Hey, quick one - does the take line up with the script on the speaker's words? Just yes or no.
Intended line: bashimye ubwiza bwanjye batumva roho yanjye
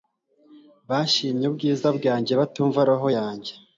yes